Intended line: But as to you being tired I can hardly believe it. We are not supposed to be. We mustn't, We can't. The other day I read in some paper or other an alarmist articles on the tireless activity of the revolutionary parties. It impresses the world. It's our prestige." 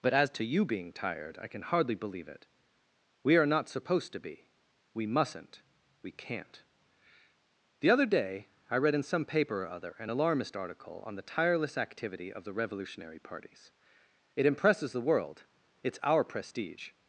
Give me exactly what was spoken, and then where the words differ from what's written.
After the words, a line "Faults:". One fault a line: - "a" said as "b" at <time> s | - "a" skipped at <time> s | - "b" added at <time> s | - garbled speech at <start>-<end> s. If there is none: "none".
But as to you being tired I can hardly believe it. We are not supposed to be. We mustn't, We can't. The other day I read in some paper or other an alarmist article on the tireless activity of the revolutionary parties. It impresses the world. It's our prestige."
Faults:
- "articles" said as "article" at 10.6 s